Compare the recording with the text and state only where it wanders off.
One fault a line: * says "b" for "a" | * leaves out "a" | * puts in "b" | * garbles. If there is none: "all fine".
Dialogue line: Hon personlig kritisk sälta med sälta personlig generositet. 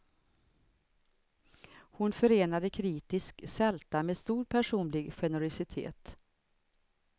* says "förenade" for "personlig"
* says "stor" for "sälta"